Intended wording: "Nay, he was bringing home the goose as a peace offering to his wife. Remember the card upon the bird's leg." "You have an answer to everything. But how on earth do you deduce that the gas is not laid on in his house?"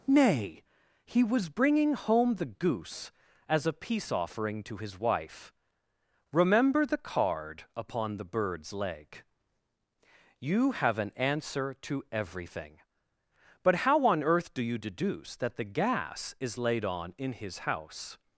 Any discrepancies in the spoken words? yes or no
yes